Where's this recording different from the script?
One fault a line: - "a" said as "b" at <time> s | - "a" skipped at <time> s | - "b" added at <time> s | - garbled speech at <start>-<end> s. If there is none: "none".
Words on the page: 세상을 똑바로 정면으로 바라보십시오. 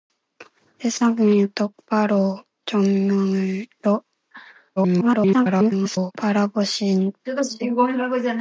- garbled speech at 4.8-6.1 s